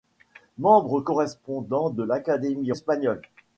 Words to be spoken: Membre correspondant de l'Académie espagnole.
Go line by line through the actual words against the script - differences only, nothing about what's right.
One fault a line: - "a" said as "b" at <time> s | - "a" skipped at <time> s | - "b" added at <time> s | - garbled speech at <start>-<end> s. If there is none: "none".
none